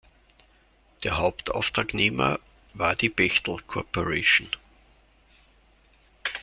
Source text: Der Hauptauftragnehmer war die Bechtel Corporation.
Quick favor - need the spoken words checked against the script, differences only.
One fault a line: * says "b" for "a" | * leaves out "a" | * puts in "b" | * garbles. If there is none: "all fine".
all fine